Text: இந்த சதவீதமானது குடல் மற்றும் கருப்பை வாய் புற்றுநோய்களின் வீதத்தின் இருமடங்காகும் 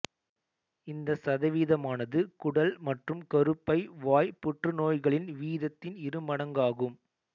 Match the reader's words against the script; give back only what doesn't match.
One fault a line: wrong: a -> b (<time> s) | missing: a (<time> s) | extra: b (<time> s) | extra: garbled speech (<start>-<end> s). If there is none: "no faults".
no faults